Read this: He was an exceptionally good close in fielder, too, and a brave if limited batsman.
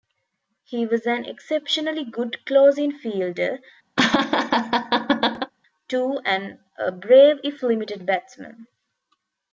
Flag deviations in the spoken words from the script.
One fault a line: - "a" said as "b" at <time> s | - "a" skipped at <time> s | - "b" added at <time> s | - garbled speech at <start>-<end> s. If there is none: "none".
none